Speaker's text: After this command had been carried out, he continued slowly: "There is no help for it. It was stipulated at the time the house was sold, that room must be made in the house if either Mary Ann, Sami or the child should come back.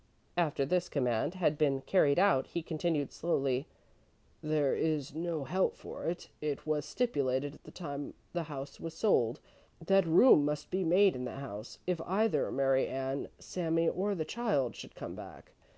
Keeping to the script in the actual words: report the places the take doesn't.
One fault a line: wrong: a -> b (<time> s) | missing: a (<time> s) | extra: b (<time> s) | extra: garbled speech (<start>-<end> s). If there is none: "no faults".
no faults